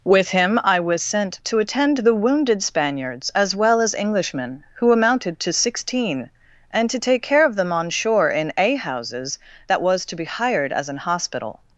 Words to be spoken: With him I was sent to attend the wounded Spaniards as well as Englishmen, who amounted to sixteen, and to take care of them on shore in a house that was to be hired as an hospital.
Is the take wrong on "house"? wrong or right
wrong